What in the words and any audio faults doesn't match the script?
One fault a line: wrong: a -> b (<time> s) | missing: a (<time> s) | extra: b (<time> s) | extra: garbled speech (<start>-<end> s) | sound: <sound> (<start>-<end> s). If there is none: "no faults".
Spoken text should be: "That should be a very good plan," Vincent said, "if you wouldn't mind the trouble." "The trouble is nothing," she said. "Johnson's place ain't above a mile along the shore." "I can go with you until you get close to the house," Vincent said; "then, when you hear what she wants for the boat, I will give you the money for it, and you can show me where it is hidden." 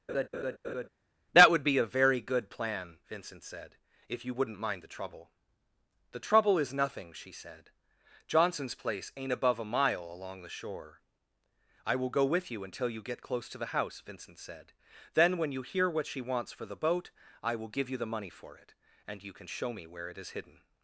sound: laugh (0.1-0.9 s)
wrong: should -> would (1.5 s)
wrong: can -> will (11.9 s)